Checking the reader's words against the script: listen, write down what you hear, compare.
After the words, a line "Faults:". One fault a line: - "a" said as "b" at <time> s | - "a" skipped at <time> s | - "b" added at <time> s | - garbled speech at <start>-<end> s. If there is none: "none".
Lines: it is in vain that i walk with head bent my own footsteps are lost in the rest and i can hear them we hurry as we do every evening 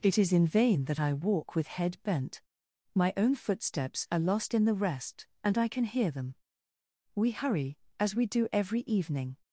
it is in vain that i walk with head bent my own footsteps are lost in the rest and i can hear them we hurry as we do every evening
Faults:
none